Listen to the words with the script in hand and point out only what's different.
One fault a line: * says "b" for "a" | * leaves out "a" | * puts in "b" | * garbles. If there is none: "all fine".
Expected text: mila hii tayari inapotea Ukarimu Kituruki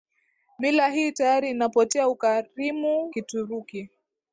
all fine